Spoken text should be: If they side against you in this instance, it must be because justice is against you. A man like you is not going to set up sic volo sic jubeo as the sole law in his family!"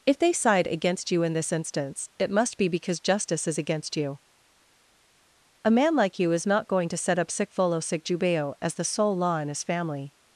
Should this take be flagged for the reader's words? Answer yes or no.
no